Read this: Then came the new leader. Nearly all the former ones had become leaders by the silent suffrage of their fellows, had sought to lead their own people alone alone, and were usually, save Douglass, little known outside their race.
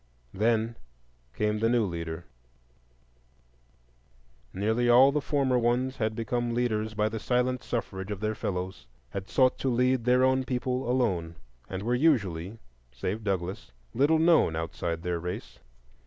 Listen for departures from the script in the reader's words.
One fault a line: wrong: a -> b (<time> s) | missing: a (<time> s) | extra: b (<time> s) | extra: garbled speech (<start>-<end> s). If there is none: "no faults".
missing: alone (11.4 s)